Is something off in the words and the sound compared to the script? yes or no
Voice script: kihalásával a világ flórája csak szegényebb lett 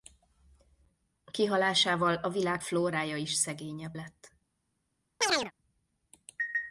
yes